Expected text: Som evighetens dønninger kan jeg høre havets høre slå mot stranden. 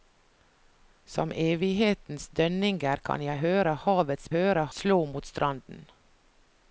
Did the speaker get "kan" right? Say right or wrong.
right